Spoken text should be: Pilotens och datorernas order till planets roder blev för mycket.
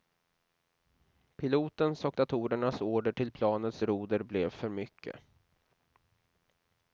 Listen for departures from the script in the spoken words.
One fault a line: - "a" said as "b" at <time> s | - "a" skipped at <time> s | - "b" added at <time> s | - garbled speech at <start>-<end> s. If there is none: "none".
none